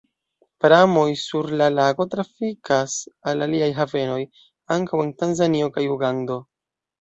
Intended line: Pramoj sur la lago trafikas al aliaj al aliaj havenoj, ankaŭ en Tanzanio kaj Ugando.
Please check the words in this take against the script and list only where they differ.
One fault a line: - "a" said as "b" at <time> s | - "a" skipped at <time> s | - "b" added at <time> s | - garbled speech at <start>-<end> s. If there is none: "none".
- "al aliaj" skipped at 3.7 s